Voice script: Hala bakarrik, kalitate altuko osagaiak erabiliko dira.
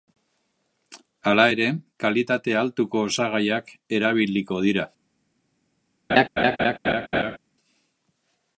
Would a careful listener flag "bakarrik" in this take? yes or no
yes